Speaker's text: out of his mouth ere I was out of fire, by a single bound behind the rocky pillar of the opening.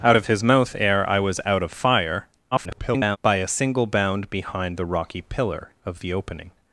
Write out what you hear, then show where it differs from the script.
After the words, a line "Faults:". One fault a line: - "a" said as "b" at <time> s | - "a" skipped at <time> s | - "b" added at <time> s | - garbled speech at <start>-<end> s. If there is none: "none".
out of his mouth ere I was out of fire, [garbled] by a single bound behind the rocky pillar of the opening.
Faults:
- garbled speech at 2.5-3.2 s